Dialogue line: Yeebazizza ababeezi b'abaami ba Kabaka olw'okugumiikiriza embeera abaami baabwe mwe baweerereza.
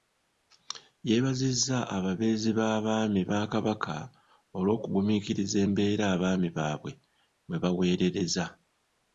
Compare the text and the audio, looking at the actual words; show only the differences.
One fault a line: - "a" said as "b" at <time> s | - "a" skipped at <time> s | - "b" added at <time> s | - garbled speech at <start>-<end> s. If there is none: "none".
none